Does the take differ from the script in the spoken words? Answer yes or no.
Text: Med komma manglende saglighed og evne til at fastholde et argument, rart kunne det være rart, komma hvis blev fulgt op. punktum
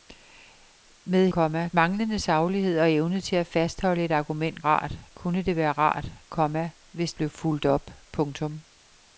no